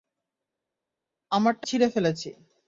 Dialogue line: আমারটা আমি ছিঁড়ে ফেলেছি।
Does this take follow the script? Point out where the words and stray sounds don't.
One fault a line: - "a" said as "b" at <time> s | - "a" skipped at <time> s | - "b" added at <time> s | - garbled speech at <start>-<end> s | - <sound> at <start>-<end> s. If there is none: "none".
- "আমি" skipped at 1.6 s